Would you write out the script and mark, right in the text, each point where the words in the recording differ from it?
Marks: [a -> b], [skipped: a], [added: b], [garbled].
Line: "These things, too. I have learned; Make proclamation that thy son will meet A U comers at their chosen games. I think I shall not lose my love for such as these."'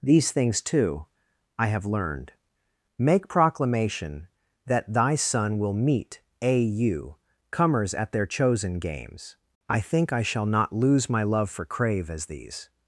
"These things, too. I have learned; Make proclamation that thy son will meet A U comers at their chosen games. I think I shall not lose my love for [such -> crave] as these."'